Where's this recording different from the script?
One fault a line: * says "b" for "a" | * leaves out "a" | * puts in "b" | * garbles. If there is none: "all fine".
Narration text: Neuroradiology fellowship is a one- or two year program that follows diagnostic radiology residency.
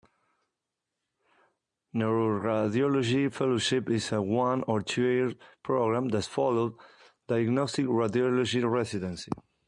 all fine